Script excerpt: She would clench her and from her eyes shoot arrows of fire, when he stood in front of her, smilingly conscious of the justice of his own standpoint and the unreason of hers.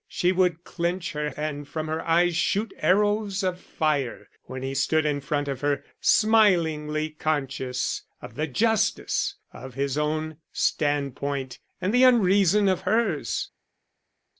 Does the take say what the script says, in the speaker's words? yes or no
yes